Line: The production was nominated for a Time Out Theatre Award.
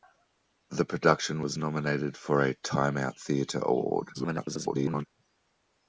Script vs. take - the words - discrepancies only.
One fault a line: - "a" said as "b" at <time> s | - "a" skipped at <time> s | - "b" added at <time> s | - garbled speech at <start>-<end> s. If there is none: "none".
- garbled speech at 4.1-5.1 s